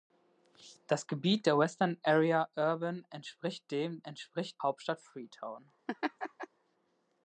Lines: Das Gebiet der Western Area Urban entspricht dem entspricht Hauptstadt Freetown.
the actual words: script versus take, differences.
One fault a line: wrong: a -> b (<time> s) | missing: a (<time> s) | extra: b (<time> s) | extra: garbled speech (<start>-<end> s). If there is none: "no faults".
no faults